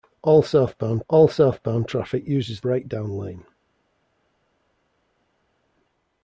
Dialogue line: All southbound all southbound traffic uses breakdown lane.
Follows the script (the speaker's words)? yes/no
yes